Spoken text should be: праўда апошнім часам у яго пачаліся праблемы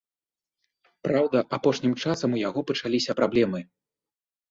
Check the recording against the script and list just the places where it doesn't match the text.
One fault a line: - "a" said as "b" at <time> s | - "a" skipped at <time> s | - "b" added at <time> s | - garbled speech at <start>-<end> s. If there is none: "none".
none